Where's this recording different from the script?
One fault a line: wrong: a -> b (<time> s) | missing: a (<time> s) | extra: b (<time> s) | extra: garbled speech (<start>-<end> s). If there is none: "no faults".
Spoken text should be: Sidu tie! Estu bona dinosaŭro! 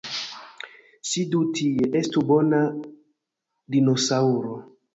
no faults